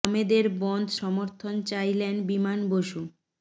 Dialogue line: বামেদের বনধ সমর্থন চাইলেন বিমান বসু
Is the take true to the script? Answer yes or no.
yes